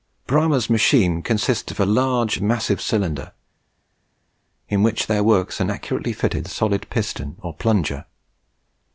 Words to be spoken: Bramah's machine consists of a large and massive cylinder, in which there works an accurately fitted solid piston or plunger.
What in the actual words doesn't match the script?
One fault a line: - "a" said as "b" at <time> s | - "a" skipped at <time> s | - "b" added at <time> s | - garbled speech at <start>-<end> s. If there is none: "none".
- "and" skipped at 2.4 s